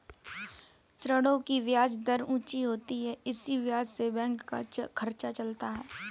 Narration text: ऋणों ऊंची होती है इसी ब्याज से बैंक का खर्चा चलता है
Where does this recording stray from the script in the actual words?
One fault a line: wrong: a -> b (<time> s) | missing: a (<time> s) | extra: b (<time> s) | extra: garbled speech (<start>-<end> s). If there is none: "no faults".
extra: की ब्याज दर (1.5 s)